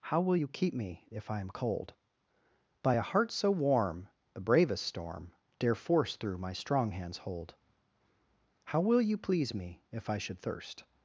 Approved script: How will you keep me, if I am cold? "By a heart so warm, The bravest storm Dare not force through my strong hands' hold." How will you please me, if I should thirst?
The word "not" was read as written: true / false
false